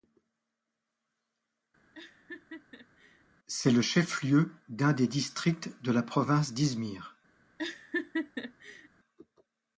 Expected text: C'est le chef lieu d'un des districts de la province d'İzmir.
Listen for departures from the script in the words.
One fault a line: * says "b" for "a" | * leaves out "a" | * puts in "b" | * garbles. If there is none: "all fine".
all fine